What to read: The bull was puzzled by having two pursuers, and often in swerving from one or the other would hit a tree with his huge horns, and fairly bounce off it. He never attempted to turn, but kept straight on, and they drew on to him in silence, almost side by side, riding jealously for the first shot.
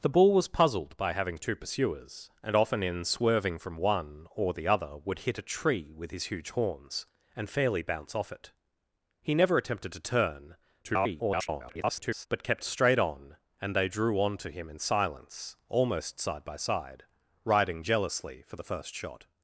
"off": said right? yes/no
yes